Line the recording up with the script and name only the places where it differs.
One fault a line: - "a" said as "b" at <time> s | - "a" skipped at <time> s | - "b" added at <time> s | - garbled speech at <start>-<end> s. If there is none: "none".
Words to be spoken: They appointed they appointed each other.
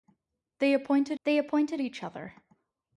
none